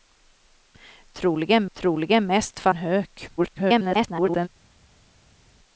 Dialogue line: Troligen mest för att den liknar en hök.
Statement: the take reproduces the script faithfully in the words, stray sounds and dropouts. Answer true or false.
false